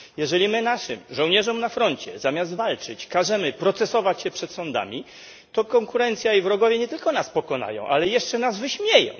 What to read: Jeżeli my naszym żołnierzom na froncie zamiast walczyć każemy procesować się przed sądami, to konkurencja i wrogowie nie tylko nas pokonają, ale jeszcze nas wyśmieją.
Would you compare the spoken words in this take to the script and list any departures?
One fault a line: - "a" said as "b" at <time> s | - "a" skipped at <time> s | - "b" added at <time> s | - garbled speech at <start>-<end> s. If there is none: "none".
none